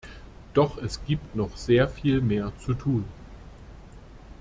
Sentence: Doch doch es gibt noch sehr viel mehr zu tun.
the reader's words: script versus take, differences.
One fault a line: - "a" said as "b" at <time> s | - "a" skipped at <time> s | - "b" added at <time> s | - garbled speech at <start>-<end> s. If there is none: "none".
- "doch" skipped at 0.8 s